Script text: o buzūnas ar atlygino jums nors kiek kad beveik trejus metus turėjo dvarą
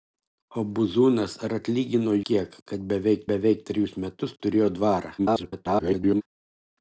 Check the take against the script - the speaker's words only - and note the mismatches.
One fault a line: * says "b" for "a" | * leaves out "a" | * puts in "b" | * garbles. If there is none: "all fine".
* leaves out "jums nors"
* puts in "beveik"
* garbles